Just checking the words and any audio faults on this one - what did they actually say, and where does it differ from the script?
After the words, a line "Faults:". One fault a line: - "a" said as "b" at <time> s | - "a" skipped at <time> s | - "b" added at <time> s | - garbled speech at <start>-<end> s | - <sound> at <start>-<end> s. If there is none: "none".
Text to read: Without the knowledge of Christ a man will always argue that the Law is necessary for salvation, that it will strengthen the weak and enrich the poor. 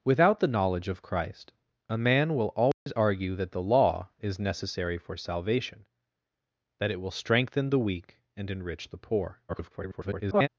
Without the knowledge of Christ a man will always argue that the Law is necessary for salvation, that it will strengthen the weak and enrich the poor. [garbled]
Faults:
- dropout at 2.7-2.9 s
- garbled speech at 9.5-10.5 s